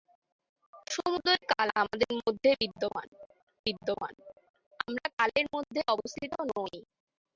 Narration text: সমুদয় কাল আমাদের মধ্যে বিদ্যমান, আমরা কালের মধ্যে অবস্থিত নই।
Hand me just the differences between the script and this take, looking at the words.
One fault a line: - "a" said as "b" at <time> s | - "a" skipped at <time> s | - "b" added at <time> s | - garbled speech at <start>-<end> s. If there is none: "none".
- "বিদ্যমান" added at 3.7 s